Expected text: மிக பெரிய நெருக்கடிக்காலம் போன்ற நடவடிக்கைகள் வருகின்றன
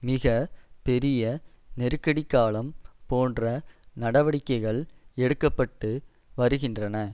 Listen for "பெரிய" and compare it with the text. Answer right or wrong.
right